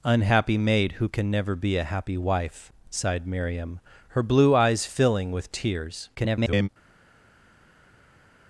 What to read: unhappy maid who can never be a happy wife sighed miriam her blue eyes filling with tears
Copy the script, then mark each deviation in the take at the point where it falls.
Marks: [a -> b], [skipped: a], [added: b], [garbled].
unhappy maid who can never be a happy wife sighed miriam her blue eyes filling with tears [garbled]